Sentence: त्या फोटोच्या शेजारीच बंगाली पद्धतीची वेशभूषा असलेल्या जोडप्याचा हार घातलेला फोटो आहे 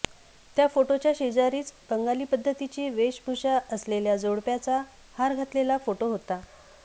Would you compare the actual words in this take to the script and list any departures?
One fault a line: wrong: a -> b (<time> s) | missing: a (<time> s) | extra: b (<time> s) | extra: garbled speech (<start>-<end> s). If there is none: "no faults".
wrong: आहे -> होता (6.1 s)